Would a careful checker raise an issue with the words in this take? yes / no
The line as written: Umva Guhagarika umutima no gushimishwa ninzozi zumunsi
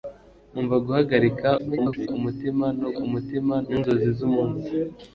yes